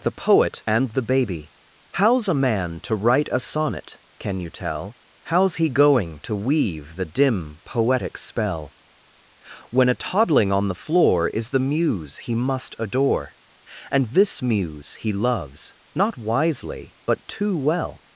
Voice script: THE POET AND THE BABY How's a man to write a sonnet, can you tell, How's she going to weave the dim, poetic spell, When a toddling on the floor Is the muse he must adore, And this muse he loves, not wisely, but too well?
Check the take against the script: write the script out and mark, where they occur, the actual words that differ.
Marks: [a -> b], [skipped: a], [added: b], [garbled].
THE POET AND THE BABY How's a man to write a sonnet, can you tell, How's [she -> he] going to weave the dim, poetic spell, When a toddling on the floor Is the muse he must adore, And this muse he loves, not wisely, but too well?